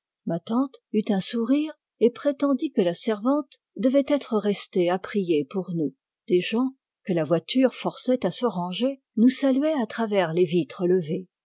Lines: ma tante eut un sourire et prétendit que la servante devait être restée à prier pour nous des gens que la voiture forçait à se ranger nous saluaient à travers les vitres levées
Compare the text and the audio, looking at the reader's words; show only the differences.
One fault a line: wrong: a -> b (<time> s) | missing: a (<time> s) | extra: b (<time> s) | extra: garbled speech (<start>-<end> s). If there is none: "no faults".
no faults